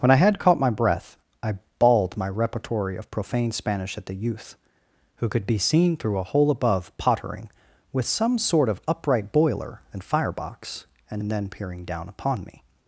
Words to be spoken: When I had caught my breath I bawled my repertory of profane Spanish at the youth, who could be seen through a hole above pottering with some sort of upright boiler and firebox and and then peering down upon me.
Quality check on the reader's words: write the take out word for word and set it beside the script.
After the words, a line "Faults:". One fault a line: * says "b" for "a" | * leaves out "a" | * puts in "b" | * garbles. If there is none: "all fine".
When I had caught my breath I bawled my repertory of profane Spanish at the youth, who could be seen through a hole above pottering with some sort of upright boiler and firebox and and then peering down upon me.
Faults:
all fine